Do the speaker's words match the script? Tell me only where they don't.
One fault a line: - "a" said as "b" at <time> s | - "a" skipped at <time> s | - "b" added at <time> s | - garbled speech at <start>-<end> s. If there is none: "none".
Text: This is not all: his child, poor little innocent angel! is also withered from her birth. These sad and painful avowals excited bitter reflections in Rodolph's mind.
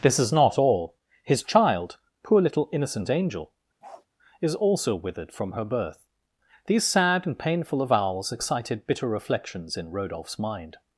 none